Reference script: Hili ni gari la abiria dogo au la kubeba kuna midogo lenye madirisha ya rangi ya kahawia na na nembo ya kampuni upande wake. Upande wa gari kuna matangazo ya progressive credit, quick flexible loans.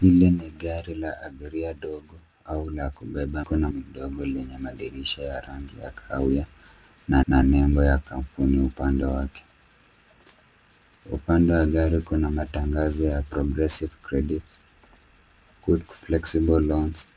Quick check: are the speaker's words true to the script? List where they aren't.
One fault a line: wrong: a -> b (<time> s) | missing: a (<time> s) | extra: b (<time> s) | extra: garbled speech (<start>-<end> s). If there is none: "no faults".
no faults